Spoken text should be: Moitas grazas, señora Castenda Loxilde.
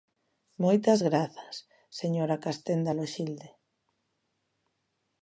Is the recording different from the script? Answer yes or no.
no